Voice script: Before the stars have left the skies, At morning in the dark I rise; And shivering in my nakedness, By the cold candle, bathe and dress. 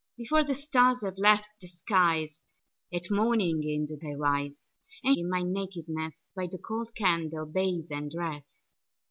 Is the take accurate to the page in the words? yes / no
no